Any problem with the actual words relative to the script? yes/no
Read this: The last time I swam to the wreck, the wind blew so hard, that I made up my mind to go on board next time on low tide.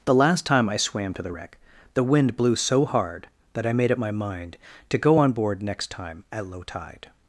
yes